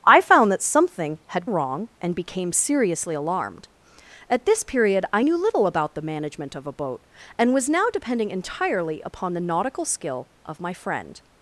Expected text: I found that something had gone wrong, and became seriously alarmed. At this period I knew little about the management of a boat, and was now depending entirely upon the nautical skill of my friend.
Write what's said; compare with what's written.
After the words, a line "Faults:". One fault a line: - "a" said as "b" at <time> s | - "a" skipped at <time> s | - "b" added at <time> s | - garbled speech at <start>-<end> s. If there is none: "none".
I found that something had wrong, and became seriously alarmed. At this period I knew little about the management of a boat, and was now depending entirely upon the nautical skill of my friend.
Faults:
- "gone" skipped at 1.4 s